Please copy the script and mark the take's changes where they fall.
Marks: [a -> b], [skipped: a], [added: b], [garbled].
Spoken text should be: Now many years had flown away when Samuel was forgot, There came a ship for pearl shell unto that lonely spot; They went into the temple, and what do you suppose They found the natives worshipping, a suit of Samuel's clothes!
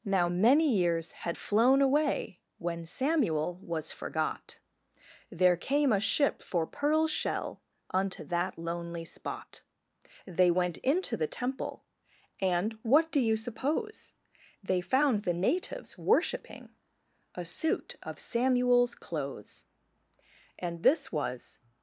Now many years had flown away when Samuel was forgot, There came a ship for pearl shell unto that lonely spot; They went into the temple, and what do you suppose They found the natives worshipping, a suit of Samuel's clothes! [added: And this was]